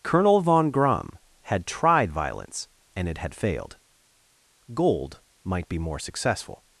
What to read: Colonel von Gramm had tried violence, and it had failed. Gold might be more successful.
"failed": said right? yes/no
yes